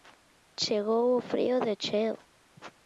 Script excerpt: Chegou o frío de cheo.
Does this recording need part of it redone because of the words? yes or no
no